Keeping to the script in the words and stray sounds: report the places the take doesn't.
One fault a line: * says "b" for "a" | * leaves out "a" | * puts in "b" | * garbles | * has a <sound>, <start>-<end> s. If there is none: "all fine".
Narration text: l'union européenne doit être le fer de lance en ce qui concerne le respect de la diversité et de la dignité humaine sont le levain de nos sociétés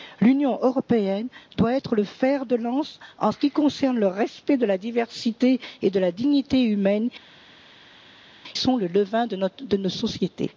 all fine